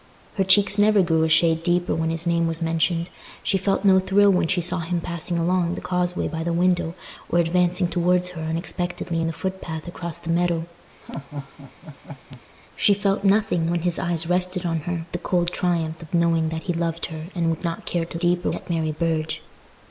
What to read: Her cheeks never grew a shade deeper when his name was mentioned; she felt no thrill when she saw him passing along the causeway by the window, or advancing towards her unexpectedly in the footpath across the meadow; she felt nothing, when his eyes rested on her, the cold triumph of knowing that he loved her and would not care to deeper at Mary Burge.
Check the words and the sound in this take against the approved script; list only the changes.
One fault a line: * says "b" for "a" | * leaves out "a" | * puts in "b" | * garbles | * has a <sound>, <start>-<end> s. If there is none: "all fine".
* has a laugh, 11.0-12.4 s